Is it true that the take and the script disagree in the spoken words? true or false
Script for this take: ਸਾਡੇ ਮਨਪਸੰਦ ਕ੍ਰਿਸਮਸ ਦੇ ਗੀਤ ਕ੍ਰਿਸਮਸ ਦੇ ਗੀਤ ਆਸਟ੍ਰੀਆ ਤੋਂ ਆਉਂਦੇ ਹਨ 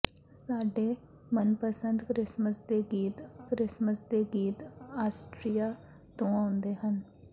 false